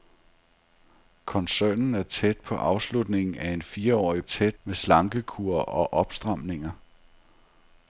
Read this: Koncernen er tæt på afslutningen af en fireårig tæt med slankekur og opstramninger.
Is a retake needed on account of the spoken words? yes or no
no